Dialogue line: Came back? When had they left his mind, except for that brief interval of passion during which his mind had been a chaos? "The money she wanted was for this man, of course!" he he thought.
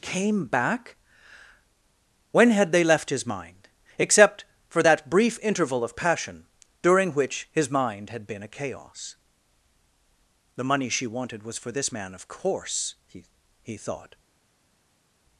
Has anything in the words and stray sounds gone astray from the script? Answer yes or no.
no